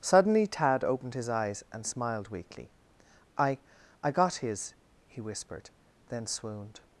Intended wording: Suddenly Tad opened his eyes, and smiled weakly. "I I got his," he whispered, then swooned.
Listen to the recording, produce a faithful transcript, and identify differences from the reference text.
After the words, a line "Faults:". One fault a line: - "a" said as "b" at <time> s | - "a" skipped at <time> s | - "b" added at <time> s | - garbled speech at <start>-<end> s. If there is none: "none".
Suddenly Tad opened his eyes, and smiled weakly. "I I got his," he whispered, then swooned.
Faults:
none